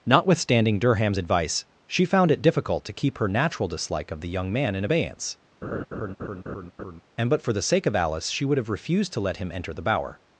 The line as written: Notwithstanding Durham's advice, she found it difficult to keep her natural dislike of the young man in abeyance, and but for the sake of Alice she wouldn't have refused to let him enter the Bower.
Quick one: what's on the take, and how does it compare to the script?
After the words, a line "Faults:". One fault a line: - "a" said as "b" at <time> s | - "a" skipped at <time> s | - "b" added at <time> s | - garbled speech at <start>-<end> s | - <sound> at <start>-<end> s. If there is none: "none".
Notwithstanding Durham's advice, she found it difficult to keep her natural dislike of the young man in abeyance, and but for the sake of Alice she would have refused to let him enter the Bower.
Faults:
- laugh at 5.6-7.0 s
- "wouldn't" said as "would" at 8.4 s